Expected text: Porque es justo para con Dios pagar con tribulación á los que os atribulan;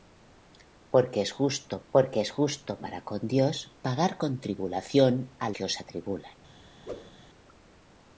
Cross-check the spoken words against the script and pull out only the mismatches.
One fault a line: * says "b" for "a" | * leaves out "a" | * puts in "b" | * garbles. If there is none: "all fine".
* puts in "porque es justo"
* leaves out "los"